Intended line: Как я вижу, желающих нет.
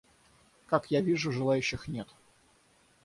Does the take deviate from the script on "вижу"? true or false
false